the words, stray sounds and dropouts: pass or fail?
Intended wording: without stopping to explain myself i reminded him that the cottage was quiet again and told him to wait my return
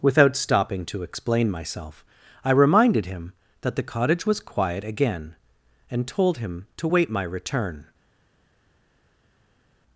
pass